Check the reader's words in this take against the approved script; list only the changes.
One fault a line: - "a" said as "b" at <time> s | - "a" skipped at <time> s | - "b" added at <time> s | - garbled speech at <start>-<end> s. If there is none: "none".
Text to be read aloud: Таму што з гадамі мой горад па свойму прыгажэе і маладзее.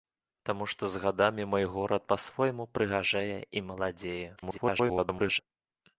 - garbled speech at 4.4-5.4 s